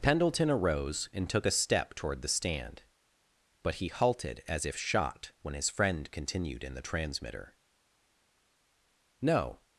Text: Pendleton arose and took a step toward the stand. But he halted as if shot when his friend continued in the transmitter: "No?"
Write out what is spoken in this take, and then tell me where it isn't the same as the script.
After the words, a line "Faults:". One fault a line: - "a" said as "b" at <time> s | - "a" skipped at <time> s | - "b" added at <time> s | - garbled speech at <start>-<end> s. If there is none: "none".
Pendleton arose and took a step toward the stand. But he halted as if shot when his friend continued in the transmitter: "No?"
Faults:
none